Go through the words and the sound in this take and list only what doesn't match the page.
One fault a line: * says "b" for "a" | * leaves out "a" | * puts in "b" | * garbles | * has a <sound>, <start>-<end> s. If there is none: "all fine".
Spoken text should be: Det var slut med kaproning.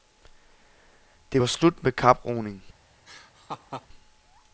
* has a laugh, 3.1-3.9 s